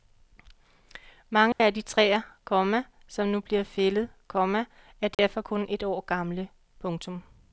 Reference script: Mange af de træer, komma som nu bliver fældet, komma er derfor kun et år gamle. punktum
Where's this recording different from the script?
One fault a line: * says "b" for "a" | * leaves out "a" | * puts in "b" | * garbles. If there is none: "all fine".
all fine